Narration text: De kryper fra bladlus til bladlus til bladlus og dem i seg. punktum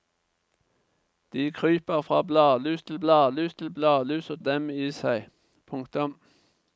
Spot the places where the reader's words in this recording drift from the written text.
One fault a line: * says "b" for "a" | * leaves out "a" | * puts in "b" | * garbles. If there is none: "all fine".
all fine